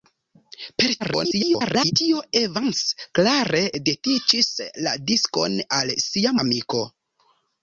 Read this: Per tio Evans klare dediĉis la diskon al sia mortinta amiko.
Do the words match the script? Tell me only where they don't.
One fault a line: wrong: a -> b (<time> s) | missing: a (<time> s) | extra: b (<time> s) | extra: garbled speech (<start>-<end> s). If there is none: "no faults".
extra: garbled speech (1.0-1.9 s)
missing: mortinta (6.4 s)